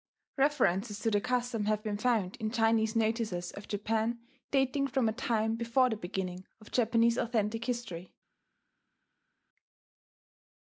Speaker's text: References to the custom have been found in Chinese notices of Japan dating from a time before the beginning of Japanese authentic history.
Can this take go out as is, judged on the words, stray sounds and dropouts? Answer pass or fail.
pass